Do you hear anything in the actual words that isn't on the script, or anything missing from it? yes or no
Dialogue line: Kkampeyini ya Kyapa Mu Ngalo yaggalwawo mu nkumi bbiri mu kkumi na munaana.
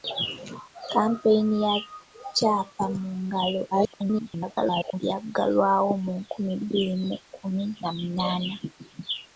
yes